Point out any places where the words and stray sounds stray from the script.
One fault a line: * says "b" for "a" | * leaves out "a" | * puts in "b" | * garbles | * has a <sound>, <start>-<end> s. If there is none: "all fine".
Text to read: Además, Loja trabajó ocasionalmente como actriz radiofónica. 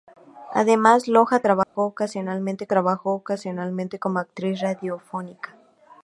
* has a dropout, 1.6-1.8 s
* puts in "trabajó ocasionalmente"